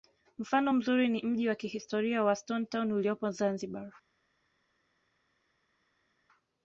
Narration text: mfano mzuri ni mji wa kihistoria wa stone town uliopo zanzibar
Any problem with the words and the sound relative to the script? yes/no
no